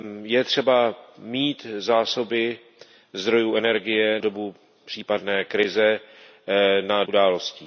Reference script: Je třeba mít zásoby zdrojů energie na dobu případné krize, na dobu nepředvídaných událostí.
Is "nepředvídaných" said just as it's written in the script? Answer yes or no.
no